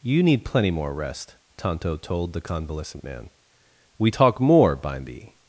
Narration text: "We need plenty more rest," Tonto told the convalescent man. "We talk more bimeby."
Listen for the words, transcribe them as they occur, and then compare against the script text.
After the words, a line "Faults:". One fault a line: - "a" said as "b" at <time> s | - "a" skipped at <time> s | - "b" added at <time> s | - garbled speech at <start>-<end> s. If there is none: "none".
"You need plenty more rest," Tonto told the convalescent man. "We talk more bimeby."
Faults:
- "We" said as "You" at 0.0 s